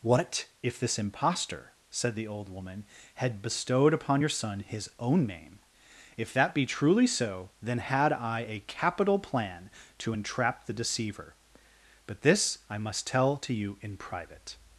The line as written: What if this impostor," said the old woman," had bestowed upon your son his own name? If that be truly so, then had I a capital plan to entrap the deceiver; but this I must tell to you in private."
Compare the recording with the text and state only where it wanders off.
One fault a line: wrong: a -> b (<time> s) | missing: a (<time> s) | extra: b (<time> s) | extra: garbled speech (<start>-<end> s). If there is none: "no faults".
no faults